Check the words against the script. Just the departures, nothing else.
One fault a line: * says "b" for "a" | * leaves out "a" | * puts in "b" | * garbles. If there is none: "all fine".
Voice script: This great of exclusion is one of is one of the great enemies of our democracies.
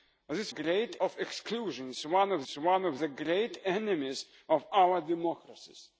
all fine